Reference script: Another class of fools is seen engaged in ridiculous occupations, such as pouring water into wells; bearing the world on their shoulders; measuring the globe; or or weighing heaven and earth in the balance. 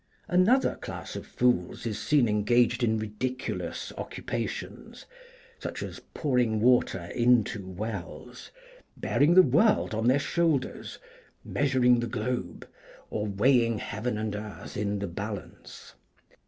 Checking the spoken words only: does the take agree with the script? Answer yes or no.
no